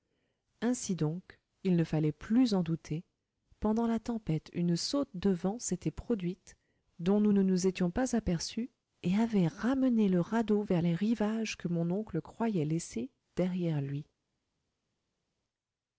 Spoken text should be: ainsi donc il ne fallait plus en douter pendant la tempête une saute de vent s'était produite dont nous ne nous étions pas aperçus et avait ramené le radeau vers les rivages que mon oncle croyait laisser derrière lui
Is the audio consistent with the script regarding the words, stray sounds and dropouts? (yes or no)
yes